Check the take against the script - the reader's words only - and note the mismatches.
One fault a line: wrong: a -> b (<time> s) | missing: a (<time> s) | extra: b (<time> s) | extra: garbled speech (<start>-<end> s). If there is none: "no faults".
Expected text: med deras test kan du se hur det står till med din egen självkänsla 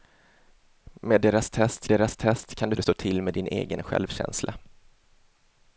extra: deras test (1.9 s)
missing: se hur (2.7 s)